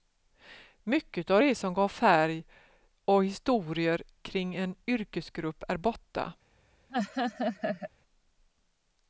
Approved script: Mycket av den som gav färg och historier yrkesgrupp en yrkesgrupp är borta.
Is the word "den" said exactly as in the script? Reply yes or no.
no